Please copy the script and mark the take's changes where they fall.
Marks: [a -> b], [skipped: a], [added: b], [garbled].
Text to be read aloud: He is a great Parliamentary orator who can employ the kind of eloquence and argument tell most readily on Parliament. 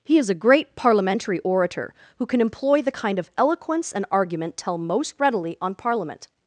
He is a great Parliamentary orator who can employ the kind of eloquence and argument tell most readily on Parliament.